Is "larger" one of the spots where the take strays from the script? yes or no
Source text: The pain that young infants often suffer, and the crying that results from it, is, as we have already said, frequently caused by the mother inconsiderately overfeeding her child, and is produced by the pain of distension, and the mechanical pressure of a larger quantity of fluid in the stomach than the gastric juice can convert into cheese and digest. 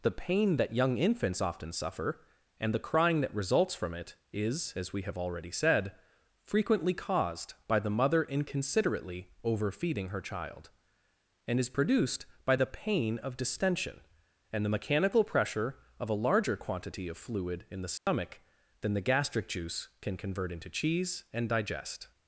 no